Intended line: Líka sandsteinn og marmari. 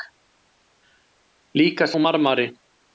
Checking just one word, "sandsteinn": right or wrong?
wrong